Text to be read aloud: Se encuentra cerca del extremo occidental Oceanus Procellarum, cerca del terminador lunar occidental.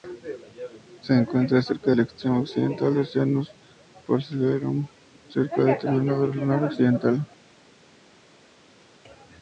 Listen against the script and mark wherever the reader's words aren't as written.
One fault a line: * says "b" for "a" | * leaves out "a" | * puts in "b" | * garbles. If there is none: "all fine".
* puts in "del"